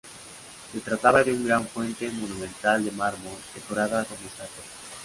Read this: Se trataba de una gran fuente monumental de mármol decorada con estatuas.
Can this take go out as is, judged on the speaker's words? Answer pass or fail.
pass